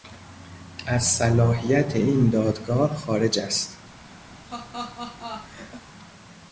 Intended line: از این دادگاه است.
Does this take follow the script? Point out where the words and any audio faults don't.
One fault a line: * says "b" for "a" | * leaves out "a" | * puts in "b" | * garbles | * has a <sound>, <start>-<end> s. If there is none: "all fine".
* puts in "صلاحیت"
* puts in "خارج"
* has a laugh, 4.3-5.9 s